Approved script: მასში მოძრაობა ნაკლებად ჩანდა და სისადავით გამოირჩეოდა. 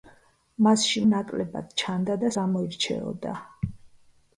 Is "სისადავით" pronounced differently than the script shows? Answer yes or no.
yes